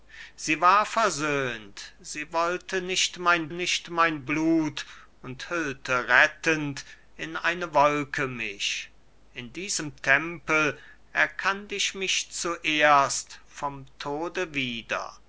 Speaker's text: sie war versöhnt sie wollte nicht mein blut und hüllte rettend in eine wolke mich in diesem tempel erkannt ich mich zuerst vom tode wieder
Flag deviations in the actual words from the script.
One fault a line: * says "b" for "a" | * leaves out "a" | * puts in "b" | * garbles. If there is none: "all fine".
* puts in "nicht mein"